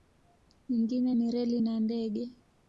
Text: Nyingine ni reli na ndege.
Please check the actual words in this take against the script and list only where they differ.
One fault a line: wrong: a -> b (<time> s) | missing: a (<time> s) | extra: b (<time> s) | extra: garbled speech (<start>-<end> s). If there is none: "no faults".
no faults